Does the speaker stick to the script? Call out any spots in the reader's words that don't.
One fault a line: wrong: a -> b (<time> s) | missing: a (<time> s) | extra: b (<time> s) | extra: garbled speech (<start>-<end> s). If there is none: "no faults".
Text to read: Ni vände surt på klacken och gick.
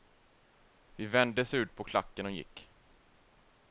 wrong: Ni -> Vi (0.9 s)